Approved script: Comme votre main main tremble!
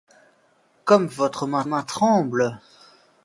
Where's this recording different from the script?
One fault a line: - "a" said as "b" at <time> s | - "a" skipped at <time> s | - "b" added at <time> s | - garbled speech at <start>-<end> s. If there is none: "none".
none